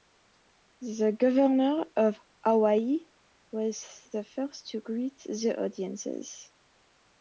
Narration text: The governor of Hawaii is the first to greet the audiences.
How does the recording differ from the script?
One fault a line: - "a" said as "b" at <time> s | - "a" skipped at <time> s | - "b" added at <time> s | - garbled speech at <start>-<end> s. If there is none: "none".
- "is" said as "was" at 3.5 s